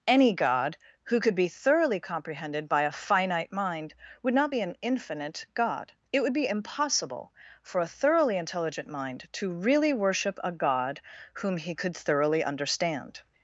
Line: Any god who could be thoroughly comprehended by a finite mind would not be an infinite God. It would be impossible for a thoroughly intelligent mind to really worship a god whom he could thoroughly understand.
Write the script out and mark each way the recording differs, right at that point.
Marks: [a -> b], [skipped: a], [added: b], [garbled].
Any god who could be thoroughly comprehended by a finite mind would not be an infinite God. It would be impossible for a thoroughly intelligent mind to really worship a god whom he could thoroughly understand.